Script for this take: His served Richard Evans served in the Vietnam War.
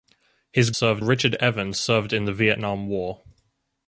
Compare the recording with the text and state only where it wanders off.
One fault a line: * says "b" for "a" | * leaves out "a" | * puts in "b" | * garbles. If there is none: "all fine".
all fine